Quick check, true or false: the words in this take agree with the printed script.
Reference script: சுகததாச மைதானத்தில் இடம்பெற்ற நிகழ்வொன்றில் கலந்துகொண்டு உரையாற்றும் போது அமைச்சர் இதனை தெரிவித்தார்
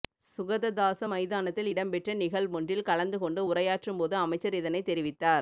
true